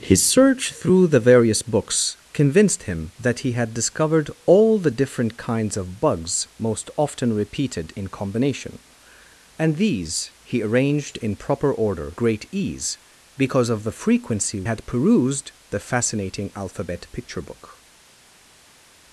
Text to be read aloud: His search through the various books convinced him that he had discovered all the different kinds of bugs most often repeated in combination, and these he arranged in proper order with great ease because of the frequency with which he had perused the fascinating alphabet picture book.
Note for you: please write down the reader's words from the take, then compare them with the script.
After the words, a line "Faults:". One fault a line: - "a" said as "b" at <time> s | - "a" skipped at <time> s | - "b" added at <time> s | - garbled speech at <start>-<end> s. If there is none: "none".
His search through the various books convinced him that he had discovered all the different kinds of bugs most often repeated in combination, and these he arranged in proper order great ease because of the frequency had perused the fascinating alphabet picture book.
Faults:
- "with" skipped at 12.2 s
- "with which he" skipped at 14.6 s